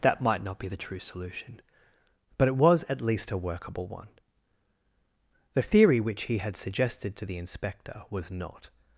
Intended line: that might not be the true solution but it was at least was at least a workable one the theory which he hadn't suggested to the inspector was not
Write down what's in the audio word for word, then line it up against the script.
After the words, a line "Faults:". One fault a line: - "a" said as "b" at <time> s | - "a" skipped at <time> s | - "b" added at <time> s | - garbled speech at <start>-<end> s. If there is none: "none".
that might not be the true solution but it was at least a workable one the theory which he had suggested to the inspector was not
Faults:
- "was at least" skipped at 3.3 s
- "hadn't" said as "had" at 6.4 s